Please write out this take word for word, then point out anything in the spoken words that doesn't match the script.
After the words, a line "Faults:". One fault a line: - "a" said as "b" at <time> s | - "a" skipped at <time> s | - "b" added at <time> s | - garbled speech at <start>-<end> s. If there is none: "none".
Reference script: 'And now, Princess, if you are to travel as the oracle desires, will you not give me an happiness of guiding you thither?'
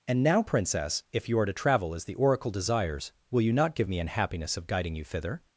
'And now, Princess, if you are to travel as the oracle desires, will you not give me an happiness of guiding you thither?'
Faults:
none